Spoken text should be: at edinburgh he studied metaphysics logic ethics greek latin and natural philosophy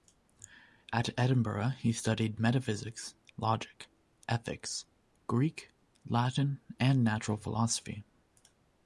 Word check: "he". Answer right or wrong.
right